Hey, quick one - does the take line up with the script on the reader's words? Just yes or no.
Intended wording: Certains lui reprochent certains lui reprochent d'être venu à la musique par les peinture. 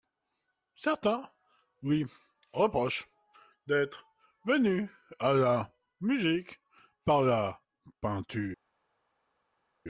no